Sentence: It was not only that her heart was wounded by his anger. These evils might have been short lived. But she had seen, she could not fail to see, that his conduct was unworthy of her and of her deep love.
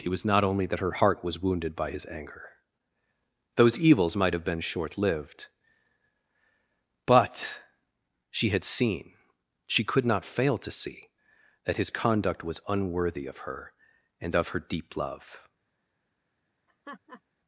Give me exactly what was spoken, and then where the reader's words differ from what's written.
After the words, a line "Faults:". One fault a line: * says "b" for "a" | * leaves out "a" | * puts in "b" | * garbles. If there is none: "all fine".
It was not only that her heart was wounded by his anger. Those evils might have been short lived. But she had seen, she could not fail to see, that his conduct was unworthy of her and of her deep love.
Faults:
* says "Those" for "These"